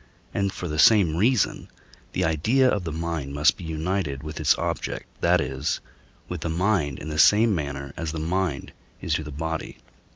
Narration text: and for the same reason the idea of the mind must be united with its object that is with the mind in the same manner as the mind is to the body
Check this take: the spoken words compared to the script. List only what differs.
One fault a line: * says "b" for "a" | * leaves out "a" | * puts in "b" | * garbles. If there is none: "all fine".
all fine